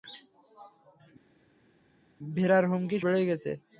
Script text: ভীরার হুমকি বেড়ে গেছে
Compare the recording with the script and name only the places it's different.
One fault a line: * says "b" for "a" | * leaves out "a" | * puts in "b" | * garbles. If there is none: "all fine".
all fine